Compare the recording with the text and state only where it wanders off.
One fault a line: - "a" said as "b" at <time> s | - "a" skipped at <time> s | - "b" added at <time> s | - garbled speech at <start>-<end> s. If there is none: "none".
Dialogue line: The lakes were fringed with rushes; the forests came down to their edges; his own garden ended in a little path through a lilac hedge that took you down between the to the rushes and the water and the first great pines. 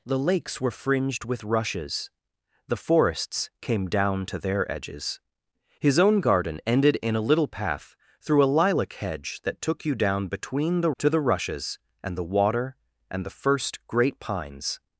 none